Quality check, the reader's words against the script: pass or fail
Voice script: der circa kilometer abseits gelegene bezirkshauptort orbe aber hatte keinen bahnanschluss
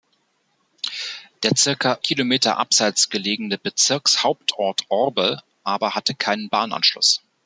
pass